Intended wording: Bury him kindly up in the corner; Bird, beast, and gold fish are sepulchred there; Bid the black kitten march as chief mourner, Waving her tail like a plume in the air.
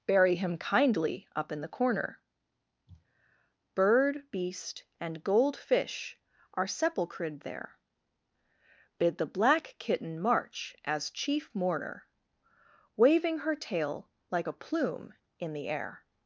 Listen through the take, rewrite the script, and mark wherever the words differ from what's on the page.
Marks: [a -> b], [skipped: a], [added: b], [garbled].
Bury him kindly up in the corner; Bird, beast, and gold fish are sepulchred there; Bid the black kitten march as chief mourner, Waving her tail like a plume in the air.